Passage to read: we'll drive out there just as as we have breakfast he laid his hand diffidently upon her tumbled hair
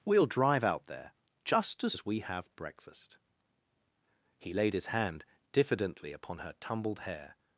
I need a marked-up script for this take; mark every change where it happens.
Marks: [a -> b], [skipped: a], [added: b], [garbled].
we'll drive out there just as as we have breakfast he laid his hand diffidently upon her tumbled hair